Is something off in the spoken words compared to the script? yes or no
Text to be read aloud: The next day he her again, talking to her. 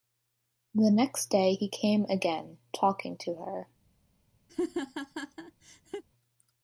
yes